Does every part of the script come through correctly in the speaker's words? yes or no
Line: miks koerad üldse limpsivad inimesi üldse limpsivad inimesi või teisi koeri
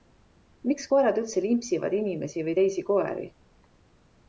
no